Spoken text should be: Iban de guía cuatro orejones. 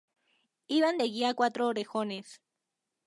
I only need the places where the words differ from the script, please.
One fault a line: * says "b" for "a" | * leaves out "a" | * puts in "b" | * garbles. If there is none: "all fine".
all fine